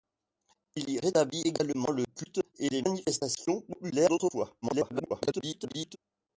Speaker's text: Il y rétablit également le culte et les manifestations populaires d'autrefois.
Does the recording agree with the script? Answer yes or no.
no